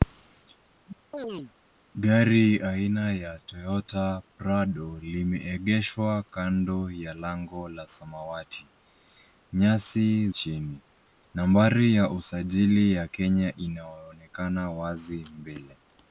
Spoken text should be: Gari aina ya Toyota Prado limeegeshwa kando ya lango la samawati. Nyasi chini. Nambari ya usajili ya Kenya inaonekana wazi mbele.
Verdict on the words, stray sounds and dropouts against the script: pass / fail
fail